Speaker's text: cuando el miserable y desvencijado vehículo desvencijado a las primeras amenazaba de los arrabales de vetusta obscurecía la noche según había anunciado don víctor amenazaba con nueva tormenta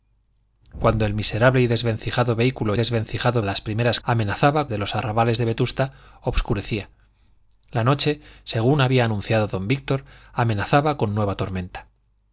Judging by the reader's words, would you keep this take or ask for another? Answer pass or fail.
pass